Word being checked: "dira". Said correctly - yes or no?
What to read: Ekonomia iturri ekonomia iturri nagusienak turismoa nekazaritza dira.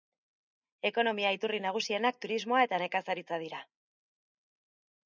yes